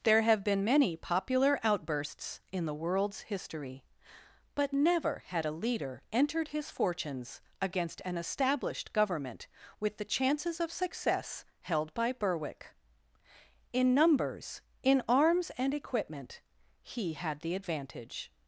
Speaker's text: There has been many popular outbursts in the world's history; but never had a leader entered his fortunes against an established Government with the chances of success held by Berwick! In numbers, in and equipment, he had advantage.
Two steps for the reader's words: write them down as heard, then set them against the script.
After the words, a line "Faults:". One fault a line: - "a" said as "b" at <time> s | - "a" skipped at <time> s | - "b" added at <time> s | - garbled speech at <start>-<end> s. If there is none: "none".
There have been many popular outbursts in the world's history; but never had a leader entered his fortunes against an established Government with the chances of success held by Berwick! In numbers, in arms and equipment, he had the advantage.
Faults:
- "has" said as "have" at 0.2 s
- "arms" added at 15.1 s
- "the" added at 17.4 s